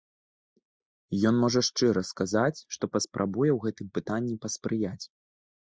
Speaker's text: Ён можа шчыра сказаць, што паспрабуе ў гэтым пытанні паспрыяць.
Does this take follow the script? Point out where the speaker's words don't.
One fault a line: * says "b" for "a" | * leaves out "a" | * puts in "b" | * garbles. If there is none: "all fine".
all fine